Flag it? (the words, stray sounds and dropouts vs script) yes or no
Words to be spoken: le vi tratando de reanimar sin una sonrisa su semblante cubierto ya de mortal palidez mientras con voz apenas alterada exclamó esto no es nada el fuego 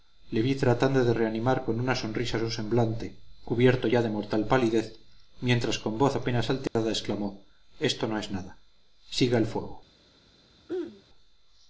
yes